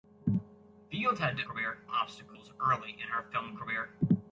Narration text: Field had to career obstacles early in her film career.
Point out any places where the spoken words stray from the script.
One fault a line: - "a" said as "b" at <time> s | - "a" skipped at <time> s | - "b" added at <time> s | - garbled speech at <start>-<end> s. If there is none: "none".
none